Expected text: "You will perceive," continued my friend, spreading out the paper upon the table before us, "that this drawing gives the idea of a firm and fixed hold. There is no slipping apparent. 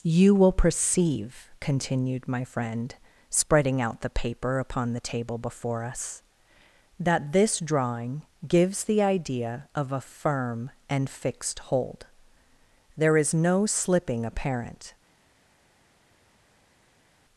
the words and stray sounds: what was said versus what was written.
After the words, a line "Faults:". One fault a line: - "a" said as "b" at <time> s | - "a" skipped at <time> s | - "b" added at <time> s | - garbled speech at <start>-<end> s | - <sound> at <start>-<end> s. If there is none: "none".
"You will perceive," continued my friend, spreading out the paper upon the table before us, "that this drawing gives the idea of a firm and fixed hold. There is no slipping apparent.
Faults:
none